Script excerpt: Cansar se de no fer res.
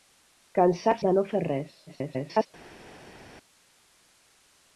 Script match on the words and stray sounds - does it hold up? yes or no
no